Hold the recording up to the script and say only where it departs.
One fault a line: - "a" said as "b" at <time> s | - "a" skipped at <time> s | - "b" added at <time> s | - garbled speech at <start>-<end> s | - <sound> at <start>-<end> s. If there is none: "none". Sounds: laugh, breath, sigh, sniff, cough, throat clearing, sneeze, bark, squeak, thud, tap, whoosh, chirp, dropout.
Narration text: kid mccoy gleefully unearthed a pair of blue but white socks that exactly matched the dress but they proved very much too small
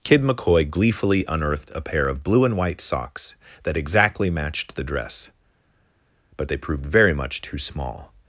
- "but" said as "and" at 2.4 s